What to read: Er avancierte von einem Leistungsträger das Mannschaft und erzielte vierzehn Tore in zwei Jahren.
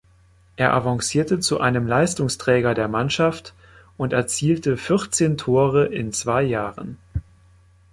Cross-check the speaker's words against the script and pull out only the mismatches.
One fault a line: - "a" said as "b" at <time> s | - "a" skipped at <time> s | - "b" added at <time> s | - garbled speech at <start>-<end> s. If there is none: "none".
- "von" said as "zu" at 1.4 s
- "das" said as "der" at 2.7 s